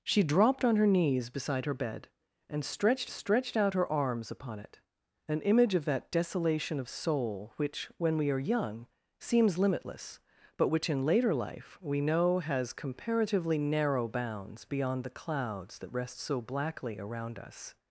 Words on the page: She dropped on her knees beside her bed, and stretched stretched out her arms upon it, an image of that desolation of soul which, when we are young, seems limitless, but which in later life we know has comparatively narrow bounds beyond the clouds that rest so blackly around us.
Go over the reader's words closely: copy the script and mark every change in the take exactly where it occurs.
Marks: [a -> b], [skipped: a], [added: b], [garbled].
She dropped on her knees beside her bed, and stretched stretched out her arms upon it, an image of that desolation of soul which, when we are young, seems limitless, but which in later life we know has comparatively narrow bounds beyond the clouds that rest so blackly around us.